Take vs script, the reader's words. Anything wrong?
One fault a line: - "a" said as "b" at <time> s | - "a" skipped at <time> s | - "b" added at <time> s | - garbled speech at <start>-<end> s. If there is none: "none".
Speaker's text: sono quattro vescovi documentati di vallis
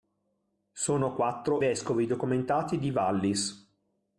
none